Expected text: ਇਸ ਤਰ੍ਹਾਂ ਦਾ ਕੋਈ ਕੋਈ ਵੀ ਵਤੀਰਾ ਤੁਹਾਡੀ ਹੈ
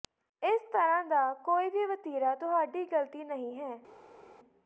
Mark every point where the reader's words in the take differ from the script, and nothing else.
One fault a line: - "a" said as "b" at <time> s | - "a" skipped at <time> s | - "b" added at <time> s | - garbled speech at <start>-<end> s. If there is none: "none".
- "ਕੋਈ" skipped at 1.7 s
- "ਗਲਤੀ ਨਹੀਂ" added at 2.9 s